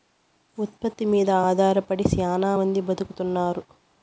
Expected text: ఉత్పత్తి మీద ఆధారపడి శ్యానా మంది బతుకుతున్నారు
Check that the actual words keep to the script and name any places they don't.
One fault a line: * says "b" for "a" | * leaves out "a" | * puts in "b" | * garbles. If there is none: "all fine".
all fine